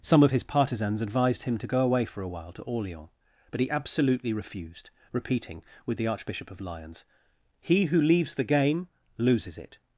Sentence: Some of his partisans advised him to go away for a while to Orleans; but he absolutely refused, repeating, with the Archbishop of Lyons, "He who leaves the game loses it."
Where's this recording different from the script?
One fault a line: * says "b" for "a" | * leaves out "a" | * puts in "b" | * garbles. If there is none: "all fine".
all fine